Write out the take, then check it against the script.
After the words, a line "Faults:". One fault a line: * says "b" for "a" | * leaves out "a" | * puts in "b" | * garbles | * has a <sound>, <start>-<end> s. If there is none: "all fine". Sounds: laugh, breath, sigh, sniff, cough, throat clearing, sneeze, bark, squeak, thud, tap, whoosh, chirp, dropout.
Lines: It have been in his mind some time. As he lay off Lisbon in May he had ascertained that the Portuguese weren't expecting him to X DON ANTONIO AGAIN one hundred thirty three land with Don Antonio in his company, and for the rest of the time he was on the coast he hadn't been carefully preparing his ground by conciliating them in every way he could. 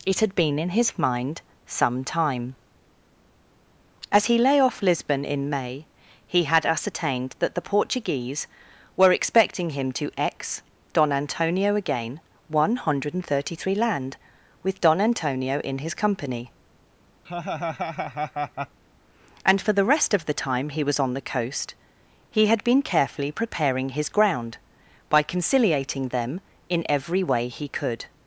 It had been in his mind some time. As he lay off Lisbon in May he had ascertained that the Portuguese were expecting him to X DON ANTONIO AGAIN one hundred thirty three land with Don Antonio in his company, and for the rest of the time he was on the coast he had been carefully preparing his ground by conciliating them in every way he could.
Faults:
* says "had" for "have"
* says "were" for "weren't"
* has a laugh, 17.2-18.8 s
* says "had" for "hadn't"